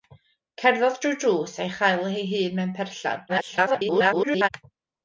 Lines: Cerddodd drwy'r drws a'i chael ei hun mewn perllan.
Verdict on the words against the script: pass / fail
fail